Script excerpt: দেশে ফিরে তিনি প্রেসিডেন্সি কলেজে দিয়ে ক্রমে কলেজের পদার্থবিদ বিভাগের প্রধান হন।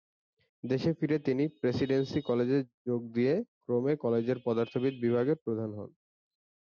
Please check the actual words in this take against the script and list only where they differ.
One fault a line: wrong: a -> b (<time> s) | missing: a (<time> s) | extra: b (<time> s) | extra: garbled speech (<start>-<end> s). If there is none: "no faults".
extra: যোগ (2.9 s)